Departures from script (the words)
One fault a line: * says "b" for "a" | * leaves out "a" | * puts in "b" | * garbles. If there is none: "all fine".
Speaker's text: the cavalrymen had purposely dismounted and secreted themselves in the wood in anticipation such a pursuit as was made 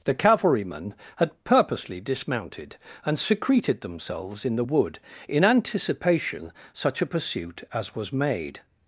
all fine